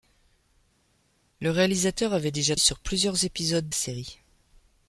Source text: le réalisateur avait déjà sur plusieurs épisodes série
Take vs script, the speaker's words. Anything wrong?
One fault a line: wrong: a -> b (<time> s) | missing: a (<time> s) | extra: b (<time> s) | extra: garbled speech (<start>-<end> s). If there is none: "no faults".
no faults